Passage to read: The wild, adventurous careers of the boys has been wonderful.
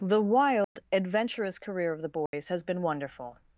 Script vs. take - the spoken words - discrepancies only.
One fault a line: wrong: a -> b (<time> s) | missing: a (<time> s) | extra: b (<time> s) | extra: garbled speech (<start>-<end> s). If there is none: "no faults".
wrong: careers -> career (1.6 s)